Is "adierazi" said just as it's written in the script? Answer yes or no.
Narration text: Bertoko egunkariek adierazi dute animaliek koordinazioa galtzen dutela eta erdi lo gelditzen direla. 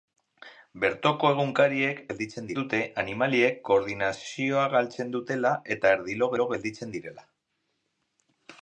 no